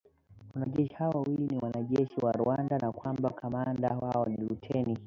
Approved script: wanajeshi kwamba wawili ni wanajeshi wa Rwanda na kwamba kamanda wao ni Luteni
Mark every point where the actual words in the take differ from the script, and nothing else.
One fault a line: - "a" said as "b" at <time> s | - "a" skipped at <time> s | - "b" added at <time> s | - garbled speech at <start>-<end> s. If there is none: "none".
- "kwamba" said as "hao" at 0.9 s